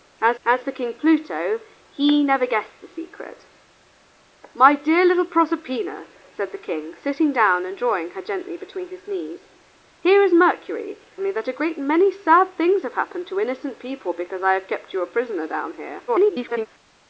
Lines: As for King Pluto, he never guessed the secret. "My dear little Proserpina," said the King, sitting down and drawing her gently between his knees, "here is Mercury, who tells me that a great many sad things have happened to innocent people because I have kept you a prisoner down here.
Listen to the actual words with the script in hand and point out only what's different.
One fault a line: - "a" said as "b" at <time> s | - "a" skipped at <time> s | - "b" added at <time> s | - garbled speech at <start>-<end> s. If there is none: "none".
- "as" added at 0.4 s
- "who tells" skipped at 11.0 s
- garbled speech at 16.1-16.7 s